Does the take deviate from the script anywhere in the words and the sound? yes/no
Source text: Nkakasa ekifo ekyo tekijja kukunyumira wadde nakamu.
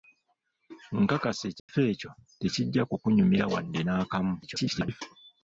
yes